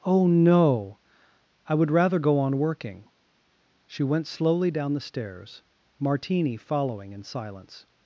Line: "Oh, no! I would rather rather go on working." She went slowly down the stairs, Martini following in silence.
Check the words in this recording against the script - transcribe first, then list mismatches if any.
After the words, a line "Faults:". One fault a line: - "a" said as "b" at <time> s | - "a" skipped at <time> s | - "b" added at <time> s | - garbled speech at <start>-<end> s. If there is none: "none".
"Oh, no! I would rather go on working." She went slowly down the stairs, Martini following in silence.
Faults:
- "rather" skipped at 2.2 s